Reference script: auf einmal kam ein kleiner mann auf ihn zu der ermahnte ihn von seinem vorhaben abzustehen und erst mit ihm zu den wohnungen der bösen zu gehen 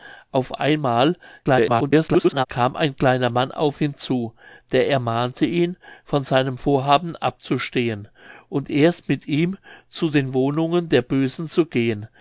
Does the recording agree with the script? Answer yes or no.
no